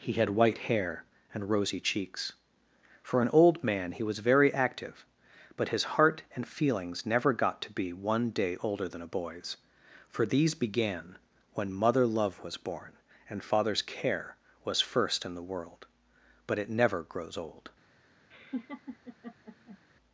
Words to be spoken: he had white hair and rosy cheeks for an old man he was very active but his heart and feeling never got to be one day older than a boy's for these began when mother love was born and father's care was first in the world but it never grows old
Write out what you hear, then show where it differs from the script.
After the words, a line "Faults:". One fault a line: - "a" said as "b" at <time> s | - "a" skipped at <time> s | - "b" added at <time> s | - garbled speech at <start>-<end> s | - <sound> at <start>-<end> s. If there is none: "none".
he had white hair and rosy cheeks for an old man he was very active but his heart and feelings never got to be one day older than a boy's for these began when mother love was born and father's care was first in the world but it never grows old
Faults:
- "feeling" said as "feelings" at 6.5 s
- laugh at 18.3-19.8 s